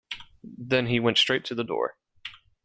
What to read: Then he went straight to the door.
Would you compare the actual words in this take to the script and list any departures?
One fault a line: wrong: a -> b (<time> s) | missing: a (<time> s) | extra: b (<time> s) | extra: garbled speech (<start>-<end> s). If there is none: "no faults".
no faults